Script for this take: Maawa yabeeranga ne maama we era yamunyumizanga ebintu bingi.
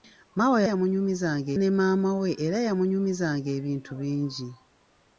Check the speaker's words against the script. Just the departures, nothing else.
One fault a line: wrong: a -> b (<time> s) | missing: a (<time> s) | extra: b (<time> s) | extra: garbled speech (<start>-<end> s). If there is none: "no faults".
wrong: yabeeranga -> yamunyumizanga (0.7 s)